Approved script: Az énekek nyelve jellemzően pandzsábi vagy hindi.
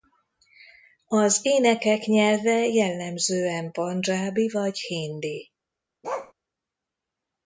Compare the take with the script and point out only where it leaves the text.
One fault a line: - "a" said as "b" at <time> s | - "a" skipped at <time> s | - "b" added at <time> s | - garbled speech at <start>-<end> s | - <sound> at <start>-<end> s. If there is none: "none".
- bark at 6.0-6.3 s